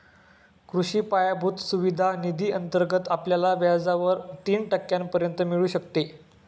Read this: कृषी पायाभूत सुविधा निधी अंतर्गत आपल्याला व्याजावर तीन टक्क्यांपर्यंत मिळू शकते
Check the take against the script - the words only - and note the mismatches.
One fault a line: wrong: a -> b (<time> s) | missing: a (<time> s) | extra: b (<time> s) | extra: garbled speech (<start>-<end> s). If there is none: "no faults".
no faults